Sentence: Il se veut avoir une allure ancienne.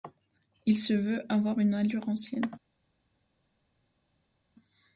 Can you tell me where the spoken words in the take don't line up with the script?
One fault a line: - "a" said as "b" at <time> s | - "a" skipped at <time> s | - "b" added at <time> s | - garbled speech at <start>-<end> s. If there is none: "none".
none